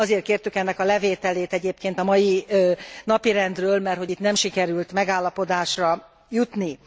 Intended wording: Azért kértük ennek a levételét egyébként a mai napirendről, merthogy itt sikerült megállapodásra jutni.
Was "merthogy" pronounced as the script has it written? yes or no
yes